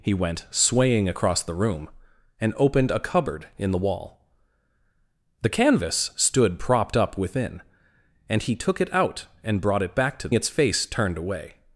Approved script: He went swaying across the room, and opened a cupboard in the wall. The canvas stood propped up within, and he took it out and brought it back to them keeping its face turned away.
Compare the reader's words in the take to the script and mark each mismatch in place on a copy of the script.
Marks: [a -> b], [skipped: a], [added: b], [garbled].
He went swaying across the room, and opened a cupboard in the wall. The canvas stood propped up within, and he took it out and brought it back to [skipped: them keeping] its face turned away.